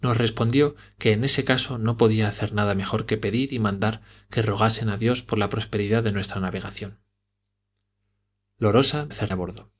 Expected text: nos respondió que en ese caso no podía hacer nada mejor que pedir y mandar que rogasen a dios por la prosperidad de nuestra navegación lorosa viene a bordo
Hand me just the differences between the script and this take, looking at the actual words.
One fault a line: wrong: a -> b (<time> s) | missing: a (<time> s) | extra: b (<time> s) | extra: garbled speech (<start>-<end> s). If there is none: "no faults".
wrong: viene -> hacer (9.1 s)